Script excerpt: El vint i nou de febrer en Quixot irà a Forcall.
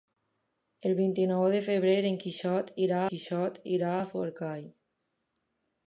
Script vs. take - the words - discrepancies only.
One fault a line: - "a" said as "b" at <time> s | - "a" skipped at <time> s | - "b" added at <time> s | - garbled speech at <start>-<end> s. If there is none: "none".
- "Quixot irà" added at 3.1 s